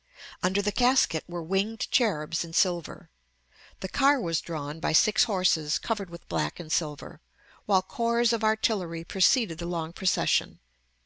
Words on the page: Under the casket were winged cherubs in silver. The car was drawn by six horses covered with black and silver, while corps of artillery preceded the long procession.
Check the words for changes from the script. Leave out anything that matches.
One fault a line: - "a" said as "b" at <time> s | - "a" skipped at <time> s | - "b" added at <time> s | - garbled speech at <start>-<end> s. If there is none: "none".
none